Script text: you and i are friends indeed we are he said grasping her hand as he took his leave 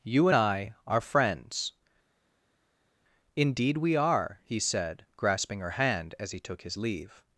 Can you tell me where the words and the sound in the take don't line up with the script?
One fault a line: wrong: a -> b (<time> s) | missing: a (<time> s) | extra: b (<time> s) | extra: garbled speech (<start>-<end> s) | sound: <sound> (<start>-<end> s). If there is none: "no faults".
missing: and (0.3 s)